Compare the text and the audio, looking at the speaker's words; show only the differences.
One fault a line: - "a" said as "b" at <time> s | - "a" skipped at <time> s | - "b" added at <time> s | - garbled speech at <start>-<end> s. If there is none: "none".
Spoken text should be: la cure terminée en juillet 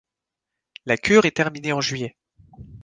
- "est" added at 1.2 s